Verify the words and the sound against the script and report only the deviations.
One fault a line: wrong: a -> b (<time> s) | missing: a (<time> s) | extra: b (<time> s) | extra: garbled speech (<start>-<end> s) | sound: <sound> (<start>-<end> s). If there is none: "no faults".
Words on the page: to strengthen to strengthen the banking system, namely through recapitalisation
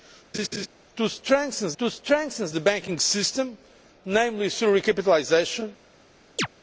sound: laugh (0.3-0.7 s)
sound: chirp (6.4-6.5 s)